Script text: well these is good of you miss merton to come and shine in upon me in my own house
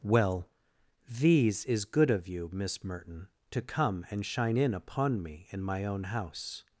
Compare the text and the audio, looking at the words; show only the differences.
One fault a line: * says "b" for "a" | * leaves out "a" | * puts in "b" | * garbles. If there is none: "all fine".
all fine